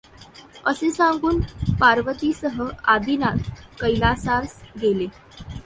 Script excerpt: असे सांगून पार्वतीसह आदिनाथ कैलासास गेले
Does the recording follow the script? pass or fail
pass